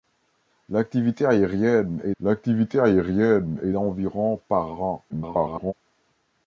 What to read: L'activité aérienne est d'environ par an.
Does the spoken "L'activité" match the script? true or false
true